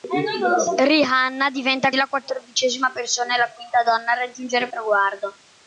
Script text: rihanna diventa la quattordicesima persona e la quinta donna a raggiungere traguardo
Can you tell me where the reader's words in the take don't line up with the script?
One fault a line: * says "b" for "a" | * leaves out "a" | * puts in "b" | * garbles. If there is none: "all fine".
all fine